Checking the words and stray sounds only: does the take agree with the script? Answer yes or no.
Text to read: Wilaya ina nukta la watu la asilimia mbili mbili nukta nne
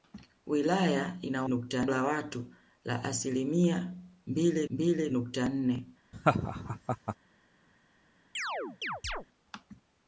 no